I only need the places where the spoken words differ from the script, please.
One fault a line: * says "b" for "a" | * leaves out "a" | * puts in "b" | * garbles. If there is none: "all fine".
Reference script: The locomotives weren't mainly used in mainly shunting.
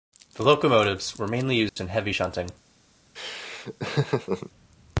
* says "were" for "weren't"
* says "heavy" for "mainly"